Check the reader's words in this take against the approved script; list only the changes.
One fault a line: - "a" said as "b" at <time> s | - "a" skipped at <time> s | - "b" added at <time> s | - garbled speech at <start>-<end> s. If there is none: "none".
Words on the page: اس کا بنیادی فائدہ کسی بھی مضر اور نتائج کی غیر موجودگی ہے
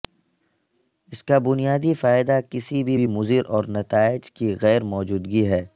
- "بھی" added at 2.9 s